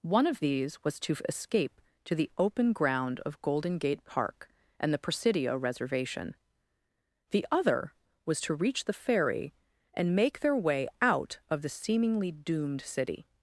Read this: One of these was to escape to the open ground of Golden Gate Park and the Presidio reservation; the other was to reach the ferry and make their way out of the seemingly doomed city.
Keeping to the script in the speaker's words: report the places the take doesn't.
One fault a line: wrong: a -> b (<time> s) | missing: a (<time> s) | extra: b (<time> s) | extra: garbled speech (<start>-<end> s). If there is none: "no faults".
no faults